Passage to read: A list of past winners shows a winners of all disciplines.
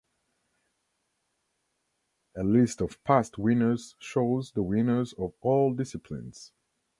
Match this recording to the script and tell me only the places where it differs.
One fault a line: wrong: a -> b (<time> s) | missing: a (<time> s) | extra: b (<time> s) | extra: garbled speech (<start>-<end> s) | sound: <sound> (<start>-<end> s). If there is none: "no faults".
wrong: a -> the (4.5 s)